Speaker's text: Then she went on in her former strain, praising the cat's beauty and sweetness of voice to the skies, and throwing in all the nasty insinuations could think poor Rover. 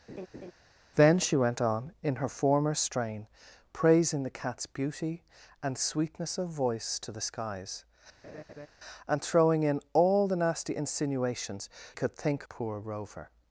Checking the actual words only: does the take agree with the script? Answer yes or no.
yes